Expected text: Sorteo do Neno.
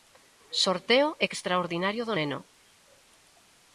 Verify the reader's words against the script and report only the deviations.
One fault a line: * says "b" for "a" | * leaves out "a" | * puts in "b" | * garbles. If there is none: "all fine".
* puts in "extraordinario"